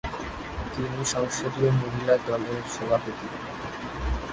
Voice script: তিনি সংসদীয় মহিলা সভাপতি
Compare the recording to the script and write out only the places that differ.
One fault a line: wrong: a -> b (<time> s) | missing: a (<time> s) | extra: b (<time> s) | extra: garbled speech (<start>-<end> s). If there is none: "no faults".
extra: দলের (2.3 s)